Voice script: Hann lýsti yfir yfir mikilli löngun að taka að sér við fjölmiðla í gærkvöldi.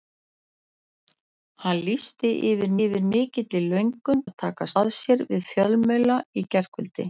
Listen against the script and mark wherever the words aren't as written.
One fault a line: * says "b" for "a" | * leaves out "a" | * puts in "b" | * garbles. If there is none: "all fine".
all fine